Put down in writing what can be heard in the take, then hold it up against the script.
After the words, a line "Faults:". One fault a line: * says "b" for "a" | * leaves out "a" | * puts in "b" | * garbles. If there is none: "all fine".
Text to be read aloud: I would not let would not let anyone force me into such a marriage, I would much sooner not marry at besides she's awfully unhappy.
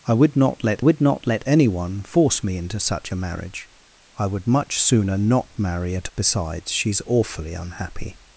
I would not let would not let anyone force me into such a marriage, I would much sooner not marry at besides she's awfully unhappy.
Faults:
all fine